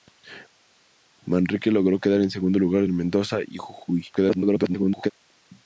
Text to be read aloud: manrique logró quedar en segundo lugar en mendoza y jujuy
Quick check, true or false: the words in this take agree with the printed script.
false